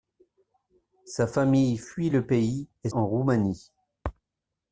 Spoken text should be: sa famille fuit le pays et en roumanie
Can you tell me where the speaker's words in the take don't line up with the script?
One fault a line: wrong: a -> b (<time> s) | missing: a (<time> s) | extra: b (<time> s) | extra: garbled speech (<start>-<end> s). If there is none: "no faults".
no faults